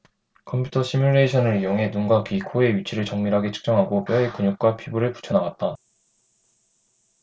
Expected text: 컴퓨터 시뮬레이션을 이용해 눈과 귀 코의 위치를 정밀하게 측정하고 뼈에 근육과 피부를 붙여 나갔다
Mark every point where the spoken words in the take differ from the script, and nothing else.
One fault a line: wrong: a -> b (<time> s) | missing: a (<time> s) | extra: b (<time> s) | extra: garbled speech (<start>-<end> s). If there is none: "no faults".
no faults